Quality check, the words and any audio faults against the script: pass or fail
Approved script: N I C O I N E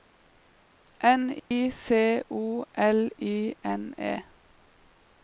fail